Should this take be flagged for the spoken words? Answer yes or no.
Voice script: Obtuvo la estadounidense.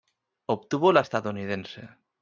no